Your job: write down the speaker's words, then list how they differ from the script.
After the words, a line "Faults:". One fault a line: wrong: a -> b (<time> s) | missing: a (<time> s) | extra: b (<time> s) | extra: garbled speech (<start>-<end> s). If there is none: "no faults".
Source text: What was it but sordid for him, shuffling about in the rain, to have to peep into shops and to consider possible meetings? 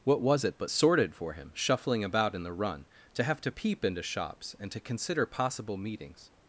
What was it but sordid for him, shuffling about in the run, to have to peep into shops and to consider possible meetings?
Faults:
wrong: rain -> run (2.5 s)